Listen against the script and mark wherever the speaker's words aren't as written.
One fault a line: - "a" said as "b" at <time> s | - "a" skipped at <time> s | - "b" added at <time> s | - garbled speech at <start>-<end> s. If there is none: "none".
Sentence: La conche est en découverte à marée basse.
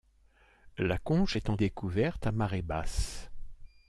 none